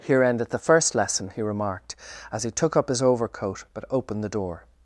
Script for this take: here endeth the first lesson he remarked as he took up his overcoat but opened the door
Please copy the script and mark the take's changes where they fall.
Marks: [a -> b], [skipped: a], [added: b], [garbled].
here endeth the first lesson he remarked as he took up his overcoat but opened the door